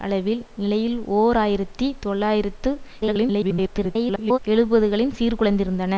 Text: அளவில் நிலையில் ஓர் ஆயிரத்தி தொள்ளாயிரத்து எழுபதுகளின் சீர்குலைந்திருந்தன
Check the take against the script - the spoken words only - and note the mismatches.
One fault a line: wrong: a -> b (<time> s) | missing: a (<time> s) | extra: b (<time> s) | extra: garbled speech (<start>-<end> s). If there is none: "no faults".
extra: garbled speech (3.0-4.4 s)